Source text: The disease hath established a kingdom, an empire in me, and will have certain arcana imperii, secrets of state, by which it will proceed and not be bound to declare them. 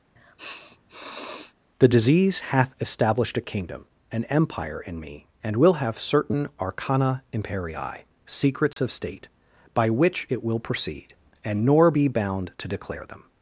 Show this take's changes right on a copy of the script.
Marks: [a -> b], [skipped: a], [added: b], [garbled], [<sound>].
[sniff] The disease hath established a kingdom, an empire in me, and will have certain arcana imperii, secrets [dropout] of state, by which it will proceed and [not -> nor] be bound to declare them.